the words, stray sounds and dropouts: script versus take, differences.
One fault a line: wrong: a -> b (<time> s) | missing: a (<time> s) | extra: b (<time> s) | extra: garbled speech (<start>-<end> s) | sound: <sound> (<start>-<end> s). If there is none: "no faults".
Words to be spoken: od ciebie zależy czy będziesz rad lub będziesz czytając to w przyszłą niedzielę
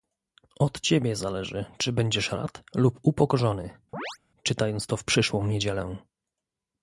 wrong: będziesz -> upokorzony (3.0 s)
sound: chirp (3.9-4.2 s)